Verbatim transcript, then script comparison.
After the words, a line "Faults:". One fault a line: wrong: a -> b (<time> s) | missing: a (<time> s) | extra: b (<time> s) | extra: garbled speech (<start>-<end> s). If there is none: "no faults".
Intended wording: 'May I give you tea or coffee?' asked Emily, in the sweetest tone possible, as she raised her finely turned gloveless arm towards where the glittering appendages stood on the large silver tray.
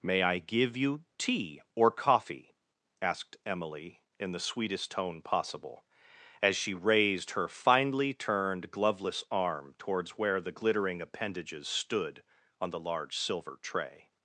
'May I give you tea or coffee?' asked Emily, in the sweetest tone possible, as she raised her finely turned gloveless arm towards where the glittering appendages stood on the large silver tray.
Faults:
no faults